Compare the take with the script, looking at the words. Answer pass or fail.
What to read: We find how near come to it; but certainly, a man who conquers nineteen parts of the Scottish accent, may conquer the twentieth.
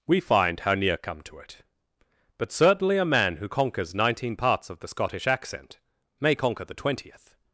pass